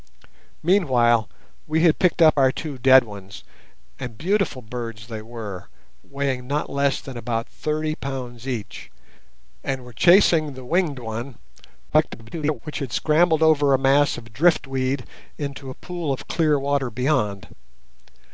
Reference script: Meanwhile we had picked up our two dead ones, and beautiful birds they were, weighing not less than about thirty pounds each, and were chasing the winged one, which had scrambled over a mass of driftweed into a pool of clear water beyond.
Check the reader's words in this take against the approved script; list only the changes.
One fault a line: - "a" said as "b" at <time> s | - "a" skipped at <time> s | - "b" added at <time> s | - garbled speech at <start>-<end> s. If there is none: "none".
- garbled speech at 11.9-12.6 s